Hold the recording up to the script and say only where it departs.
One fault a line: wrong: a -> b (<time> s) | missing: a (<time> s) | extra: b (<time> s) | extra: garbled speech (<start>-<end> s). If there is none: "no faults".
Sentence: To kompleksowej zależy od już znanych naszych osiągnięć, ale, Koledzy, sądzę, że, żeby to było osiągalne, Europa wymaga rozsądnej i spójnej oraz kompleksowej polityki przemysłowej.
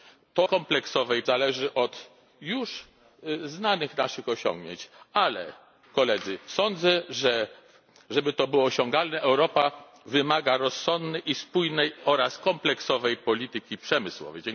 no faults